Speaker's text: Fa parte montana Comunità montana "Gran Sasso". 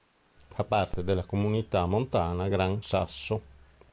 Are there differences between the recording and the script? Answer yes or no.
yes